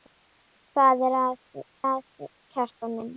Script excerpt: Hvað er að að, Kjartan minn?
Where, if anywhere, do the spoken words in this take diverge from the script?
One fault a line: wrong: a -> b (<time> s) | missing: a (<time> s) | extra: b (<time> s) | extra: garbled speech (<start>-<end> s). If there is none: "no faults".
no faults